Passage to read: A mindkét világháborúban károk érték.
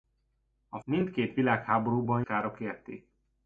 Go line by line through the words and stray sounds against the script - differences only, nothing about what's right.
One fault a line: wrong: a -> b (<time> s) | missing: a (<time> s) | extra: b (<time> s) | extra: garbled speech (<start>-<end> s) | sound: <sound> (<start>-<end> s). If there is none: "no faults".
no faults